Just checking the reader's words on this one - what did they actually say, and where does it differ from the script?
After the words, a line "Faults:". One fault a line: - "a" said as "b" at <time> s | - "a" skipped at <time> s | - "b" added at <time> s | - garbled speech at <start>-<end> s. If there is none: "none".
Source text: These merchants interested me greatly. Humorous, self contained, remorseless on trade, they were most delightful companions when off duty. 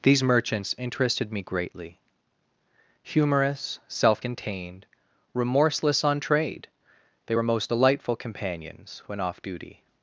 These merchants interested me greatly. Humorous, self contained, remorseless on trade, they were most delightful companions when off duty.
Faults:
none